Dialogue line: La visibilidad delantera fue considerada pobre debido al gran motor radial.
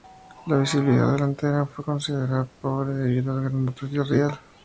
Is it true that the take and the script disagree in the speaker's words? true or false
false